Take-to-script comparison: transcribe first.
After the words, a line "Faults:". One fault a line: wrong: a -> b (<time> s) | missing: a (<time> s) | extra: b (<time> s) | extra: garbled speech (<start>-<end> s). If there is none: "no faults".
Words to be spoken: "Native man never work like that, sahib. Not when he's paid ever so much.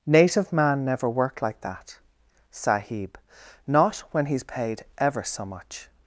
"Native man never worked like that, sahib. Not when he's paid ever so much.
Faults:
wrong: work -> worked (1.1 s)